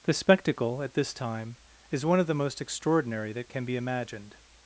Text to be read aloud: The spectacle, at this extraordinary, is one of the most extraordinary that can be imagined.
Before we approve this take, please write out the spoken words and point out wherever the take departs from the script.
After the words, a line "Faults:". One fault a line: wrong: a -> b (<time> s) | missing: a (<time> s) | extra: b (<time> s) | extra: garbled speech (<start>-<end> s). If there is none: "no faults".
The spectacle, at this time, is one of the most extraordinary that can be imagined.
Faults:
wrong: extraordinary -> time (1.1 s)